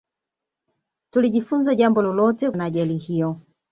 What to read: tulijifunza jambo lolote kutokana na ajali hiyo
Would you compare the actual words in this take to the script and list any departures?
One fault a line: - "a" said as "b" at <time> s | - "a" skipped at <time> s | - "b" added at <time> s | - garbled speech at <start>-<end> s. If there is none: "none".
- "kutokana" skipped at 2.5 s